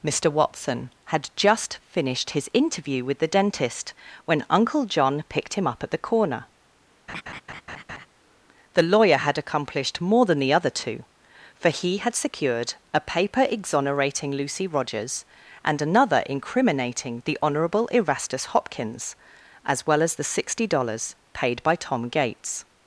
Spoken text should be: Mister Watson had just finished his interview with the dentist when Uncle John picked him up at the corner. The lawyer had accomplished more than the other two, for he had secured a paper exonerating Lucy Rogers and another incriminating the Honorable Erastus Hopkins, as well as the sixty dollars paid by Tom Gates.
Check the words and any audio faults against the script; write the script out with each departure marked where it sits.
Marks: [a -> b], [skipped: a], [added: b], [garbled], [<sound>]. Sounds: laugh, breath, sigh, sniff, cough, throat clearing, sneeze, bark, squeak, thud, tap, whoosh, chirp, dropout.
Mister Watson had just finished his interview with the dentist when Uncle John picked him up at the corner. [laugh] The lawyer had accomplished more than the other two, for he had secured a paper exonerating Lucy Rogers and another incriminating the Honorable Erastus Hopkins, as well as the sixty dollars paid by Tom Gates.